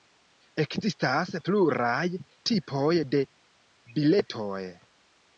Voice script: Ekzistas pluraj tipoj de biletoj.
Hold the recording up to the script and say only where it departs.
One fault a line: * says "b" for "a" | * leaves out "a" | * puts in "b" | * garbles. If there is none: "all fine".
all fine